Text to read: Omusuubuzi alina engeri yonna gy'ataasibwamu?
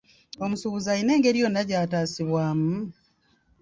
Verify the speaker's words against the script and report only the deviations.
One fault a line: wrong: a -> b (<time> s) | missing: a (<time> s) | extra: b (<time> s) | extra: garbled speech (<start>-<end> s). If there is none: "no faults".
no faults